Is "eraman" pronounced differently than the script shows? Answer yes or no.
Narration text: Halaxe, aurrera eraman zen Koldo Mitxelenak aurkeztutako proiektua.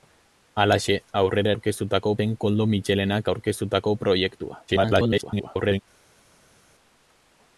yes